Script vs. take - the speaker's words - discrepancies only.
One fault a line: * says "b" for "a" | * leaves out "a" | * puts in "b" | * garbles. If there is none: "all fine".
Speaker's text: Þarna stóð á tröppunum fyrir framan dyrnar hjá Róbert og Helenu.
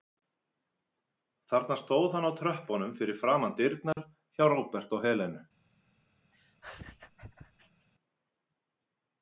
* puts in "hann"